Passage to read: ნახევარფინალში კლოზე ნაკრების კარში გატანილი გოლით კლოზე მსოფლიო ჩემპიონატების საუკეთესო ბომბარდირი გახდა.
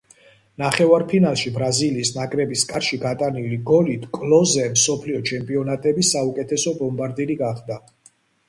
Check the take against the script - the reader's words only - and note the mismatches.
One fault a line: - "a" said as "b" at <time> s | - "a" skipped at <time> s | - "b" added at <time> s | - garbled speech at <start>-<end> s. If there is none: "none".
- "კლოზე" said as "ბრაზილიის" at 1.6 s